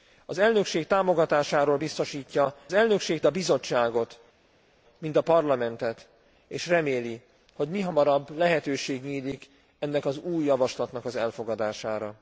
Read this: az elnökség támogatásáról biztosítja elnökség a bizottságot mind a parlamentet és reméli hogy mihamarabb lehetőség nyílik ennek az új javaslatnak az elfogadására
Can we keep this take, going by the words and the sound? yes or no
yes